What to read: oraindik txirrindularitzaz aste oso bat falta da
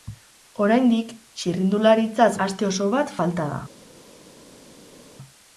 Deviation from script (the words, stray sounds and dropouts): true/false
false